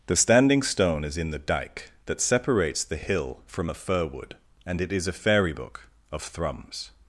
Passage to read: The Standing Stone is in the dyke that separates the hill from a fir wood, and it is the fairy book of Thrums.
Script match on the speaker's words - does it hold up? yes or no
no